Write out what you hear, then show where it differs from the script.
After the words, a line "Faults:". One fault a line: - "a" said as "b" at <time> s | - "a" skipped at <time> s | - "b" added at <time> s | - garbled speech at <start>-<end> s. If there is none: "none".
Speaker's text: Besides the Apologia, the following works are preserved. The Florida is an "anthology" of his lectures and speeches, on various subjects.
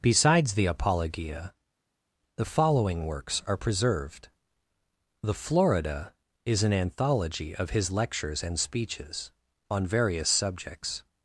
Besides the Apologia, the following works are preserved. The Florida is an "anthology" of his lectures and speeches, on various subjects.
Faults:
none